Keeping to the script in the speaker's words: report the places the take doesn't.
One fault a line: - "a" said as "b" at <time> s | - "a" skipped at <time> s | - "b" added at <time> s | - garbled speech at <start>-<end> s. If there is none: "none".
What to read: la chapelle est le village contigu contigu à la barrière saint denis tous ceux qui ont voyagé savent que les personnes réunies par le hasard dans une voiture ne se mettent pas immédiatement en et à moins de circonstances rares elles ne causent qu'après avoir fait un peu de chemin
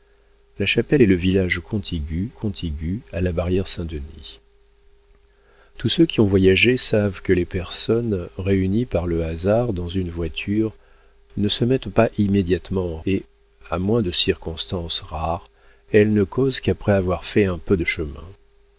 none